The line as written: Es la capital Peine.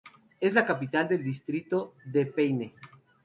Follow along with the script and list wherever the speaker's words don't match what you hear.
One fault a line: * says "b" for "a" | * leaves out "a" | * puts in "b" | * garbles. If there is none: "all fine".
* puts in "del distrito de"